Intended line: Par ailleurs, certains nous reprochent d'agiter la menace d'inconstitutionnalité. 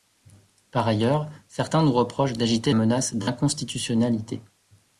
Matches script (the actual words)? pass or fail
fail